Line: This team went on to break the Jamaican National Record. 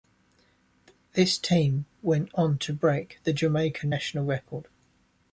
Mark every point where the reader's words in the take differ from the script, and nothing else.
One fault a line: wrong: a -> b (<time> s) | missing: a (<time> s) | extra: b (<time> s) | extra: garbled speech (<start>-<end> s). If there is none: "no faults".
no faults